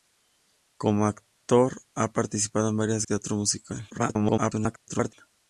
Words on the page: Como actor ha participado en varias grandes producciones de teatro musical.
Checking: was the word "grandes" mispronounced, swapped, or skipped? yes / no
yes